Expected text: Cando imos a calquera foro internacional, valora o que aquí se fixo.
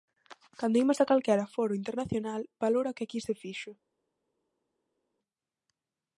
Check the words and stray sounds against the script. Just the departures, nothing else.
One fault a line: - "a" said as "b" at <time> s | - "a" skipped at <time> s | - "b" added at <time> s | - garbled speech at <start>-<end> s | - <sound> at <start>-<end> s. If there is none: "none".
none